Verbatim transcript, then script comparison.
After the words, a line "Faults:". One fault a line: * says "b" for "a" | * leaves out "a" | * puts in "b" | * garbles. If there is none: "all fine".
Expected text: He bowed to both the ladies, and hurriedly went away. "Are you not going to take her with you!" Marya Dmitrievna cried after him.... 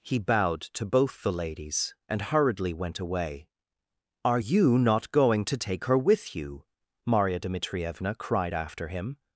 He bowed to both the ladies, and hurriedly went away. "Are you not going to take her with you!" Marya Dmitrievna cried after him....
Faults:
all fine